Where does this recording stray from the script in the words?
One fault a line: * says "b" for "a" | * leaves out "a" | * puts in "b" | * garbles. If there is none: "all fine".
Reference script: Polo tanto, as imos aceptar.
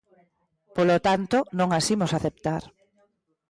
* puts in "non"